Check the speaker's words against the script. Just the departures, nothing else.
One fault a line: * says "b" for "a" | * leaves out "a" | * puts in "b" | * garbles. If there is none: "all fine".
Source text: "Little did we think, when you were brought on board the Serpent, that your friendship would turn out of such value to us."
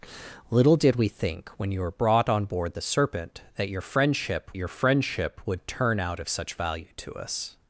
* puts in "your friendship"